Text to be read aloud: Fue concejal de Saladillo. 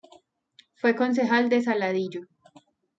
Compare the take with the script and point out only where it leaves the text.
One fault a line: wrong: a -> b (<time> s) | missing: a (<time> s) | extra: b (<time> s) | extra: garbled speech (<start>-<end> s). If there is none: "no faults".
no faults